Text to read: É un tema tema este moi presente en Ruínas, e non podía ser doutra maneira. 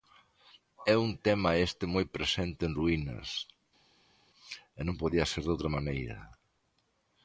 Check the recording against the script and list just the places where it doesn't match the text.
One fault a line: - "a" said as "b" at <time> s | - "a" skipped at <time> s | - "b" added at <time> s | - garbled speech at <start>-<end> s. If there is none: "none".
- "tema" skipped at 1.5 s